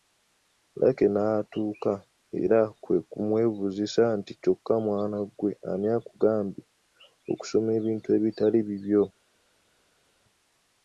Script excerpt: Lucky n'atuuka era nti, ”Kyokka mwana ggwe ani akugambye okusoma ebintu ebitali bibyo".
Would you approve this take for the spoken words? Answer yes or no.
no